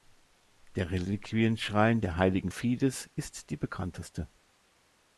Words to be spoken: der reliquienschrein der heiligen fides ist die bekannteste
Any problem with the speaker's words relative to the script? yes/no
no